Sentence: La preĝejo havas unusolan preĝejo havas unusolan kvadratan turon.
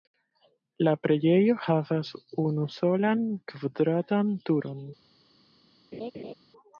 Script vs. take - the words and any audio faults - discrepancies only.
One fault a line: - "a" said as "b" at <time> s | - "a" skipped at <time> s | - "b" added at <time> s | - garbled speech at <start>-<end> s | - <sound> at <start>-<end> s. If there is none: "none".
- "preĝejo havas unusolan" skipped at 3.3 s
- laugh at 5.9-6.3 s